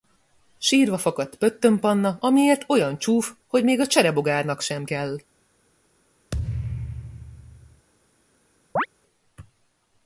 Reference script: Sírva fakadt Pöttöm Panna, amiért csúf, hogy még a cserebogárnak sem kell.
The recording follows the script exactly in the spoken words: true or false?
false